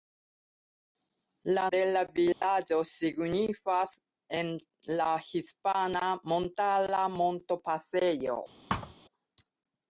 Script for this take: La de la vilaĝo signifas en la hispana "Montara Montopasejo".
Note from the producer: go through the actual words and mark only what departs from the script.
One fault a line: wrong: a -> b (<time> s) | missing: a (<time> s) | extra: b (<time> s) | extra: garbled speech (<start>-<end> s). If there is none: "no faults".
no faults